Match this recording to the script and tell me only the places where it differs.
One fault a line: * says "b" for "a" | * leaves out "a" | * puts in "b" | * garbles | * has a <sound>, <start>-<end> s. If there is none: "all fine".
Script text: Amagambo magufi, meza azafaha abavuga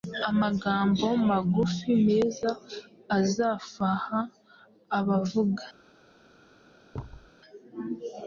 * has a thud, 6.9-7.3 s